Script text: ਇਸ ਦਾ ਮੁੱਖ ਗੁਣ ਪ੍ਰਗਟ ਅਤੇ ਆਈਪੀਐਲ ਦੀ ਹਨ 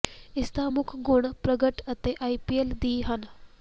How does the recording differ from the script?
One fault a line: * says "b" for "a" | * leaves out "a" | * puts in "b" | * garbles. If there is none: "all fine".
all fine